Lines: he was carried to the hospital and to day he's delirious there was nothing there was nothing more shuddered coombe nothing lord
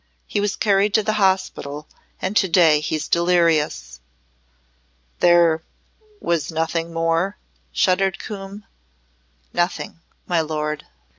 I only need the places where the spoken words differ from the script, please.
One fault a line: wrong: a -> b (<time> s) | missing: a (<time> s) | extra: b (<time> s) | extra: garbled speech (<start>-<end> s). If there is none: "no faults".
missing: there was nothing (6.9 s)
extra: my (10.2 s)